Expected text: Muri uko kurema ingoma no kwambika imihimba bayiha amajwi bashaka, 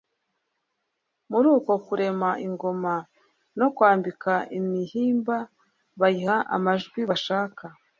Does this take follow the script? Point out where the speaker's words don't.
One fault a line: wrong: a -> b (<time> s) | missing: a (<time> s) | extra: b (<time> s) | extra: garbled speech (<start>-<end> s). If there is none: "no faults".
no faults